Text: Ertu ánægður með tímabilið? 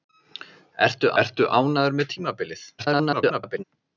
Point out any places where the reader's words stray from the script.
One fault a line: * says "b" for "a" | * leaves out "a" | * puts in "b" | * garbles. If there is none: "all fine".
* puts in "ertu"
* garbles